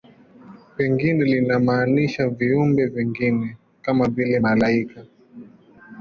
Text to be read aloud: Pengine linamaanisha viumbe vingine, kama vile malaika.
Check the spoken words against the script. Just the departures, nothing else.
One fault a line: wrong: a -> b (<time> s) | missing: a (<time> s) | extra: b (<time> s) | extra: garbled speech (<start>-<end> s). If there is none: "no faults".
no faults